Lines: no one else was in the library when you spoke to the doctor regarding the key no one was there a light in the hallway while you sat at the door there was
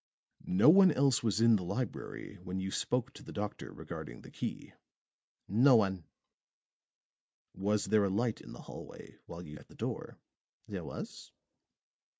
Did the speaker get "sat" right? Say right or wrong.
wrong